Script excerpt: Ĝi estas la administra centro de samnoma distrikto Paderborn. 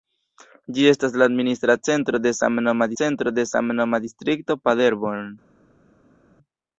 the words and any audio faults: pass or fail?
fail